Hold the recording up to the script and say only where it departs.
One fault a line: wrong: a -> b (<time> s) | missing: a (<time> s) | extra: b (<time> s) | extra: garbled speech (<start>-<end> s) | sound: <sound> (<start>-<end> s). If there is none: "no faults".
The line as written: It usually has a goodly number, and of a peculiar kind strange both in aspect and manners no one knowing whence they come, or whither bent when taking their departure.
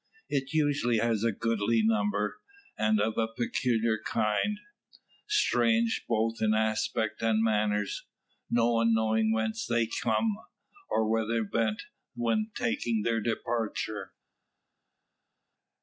no faults